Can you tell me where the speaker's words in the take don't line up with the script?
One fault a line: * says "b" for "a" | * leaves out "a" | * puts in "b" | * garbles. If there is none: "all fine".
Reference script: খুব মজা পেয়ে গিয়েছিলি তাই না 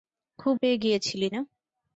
* leaves out "মজা"
* leaves out "তাই"